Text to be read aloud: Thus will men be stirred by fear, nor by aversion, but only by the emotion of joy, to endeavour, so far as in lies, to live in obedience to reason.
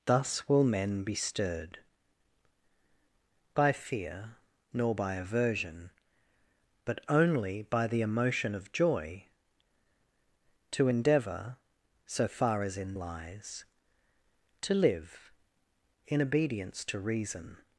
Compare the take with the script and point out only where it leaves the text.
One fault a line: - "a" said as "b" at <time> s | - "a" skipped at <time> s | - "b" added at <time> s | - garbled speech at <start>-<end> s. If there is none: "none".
none